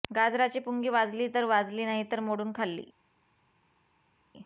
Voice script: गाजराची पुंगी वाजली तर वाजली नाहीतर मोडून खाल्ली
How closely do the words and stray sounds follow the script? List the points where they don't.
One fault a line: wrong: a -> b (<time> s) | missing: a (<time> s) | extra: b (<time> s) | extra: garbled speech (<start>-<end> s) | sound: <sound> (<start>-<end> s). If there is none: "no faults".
no faults